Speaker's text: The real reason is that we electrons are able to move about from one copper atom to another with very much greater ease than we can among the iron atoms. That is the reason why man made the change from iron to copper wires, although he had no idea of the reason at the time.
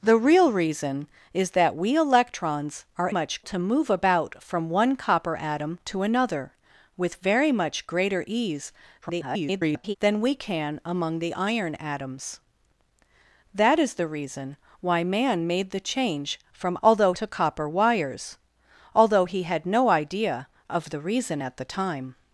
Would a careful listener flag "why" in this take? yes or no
no